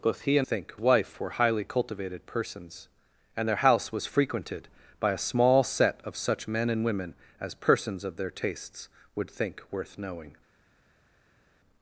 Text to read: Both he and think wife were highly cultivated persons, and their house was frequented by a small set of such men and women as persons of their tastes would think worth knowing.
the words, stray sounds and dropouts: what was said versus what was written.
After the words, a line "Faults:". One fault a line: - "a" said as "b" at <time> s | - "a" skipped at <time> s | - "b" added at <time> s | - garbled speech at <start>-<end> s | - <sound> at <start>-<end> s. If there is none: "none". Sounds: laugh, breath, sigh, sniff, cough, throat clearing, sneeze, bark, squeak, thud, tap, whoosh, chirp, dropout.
Both he and think wife were highly cultivated persons, and their house was frequented by a small set of such men and women as persons of their tastes would think worth knowing.
Faults:
none